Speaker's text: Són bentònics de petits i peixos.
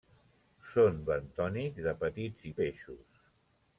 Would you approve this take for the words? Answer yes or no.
yes